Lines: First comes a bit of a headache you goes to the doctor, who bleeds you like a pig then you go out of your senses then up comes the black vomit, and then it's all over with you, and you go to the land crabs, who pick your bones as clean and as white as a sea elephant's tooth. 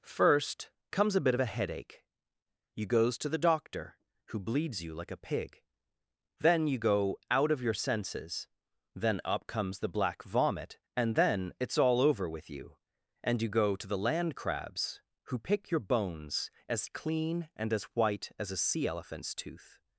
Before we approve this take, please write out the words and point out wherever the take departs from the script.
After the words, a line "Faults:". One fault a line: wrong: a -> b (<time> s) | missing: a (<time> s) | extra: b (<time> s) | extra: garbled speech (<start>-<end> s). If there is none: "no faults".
First comes a bit of a headache you goes to the doctor, who bleeds you like a pig then you go out of your senses then up comes the black vomit, and then it's all over with you, and you go to the land crabs, who pick your bones as clean and as white as a sea elephant's tooth.
Faults:
no faults